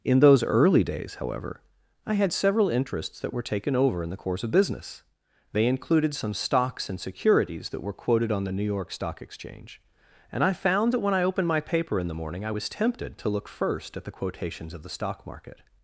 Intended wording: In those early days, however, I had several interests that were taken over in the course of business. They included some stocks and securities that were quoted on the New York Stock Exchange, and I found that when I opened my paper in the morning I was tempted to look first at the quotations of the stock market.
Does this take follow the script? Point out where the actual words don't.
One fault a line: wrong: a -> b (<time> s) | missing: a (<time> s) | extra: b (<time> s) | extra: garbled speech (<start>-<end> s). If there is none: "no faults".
no faults